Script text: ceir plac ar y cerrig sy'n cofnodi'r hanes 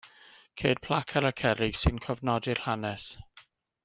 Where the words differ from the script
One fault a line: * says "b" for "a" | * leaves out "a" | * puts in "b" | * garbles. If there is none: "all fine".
all fine